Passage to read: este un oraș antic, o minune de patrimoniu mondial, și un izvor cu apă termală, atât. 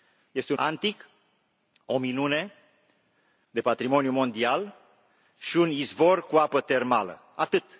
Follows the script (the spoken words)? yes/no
no